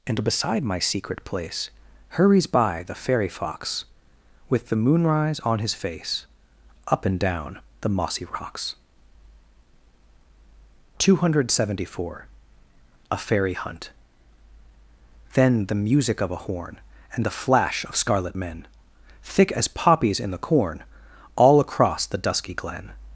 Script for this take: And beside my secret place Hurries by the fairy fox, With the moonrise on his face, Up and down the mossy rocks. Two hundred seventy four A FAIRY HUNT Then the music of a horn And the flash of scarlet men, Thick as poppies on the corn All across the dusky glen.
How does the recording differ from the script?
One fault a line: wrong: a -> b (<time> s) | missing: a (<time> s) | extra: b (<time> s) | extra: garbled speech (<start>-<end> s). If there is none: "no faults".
wrong: on -> in (20.2 s)